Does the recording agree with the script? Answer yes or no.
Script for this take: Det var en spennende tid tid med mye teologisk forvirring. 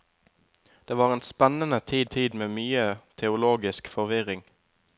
yes